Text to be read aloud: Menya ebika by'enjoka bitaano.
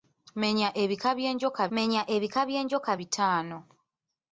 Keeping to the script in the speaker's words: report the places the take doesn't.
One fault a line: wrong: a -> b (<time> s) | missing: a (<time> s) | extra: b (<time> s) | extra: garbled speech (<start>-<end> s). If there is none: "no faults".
extra: menya ebika by'enjoka (1.8 s)